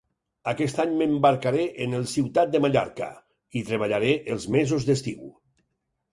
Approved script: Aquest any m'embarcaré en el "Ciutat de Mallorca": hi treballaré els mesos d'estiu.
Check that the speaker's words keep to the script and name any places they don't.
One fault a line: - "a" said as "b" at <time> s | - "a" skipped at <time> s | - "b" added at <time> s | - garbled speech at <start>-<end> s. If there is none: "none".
none